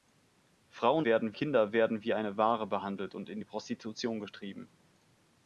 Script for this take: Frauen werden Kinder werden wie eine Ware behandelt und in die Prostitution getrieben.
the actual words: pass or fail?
pass